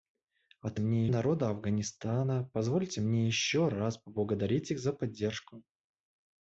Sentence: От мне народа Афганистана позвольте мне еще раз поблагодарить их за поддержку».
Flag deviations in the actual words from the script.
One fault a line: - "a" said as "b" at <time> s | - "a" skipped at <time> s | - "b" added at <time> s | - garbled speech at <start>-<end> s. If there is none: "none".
none